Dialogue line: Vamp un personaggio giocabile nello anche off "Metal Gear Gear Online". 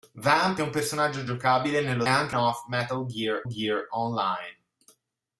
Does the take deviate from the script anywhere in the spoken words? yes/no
no